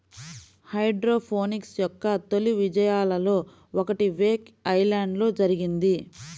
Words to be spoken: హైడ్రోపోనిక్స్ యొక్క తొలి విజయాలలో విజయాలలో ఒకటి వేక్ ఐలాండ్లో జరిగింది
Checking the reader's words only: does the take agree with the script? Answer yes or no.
no